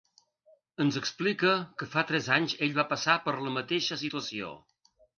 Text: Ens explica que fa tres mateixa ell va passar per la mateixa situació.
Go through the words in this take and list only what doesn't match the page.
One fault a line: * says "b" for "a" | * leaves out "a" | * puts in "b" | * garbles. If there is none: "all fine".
* says "anys" for "mateixa"